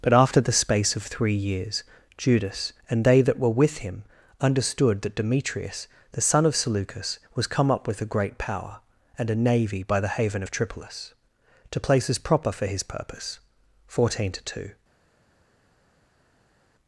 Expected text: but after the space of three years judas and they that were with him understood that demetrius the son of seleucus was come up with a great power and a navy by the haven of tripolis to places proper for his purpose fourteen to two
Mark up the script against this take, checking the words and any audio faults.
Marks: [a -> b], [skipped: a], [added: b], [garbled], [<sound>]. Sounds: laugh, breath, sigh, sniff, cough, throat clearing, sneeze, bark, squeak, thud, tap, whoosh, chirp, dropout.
but after the space of three years judas and they that were with him understood that demetrius the son of seleucus was come up with a great power and a navy by the haven of tripolis to places proper for his purpose fourteen to two